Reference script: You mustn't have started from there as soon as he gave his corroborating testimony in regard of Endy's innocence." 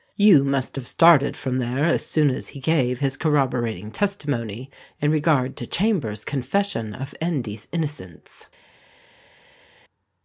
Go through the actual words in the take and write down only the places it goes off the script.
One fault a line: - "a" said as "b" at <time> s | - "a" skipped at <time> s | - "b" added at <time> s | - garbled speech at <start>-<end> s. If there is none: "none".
- "mustn't" said as "must" at 0.4 s
- "to Chambers confession" added at 5.6 s